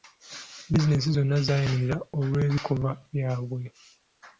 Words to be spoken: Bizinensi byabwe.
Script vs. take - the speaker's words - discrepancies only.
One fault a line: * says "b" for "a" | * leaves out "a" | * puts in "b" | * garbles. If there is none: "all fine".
* puts in "zonna zaayimirira olw'ebikolwa"